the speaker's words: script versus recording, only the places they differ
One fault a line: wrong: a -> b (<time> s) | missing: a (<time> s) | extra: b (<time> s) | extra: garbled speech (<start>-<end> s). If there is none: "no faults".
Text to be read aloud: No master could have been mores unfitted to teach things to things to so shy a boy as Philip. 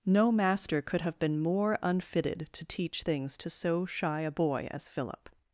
wrong: mores -> more (1.4 s)
missing: things to (3.5 s)